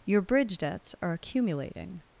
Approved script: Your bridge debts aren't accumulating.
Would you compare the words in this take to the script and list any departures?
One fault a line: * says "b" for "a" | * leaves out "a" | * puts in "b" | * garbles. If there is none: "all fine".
* says "are" for "aren't"